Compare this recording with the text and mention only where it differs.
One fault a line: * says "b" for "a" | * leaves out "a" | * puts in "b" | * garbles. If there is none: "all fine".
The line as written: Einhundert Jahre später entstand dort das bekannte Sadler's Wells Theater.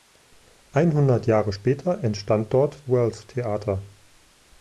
* leaves out "das bekannte Sadler's"